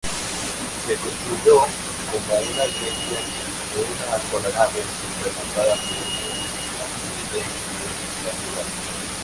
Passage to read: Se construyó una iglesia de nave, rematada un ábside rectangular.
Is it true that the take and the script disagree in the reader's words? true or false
true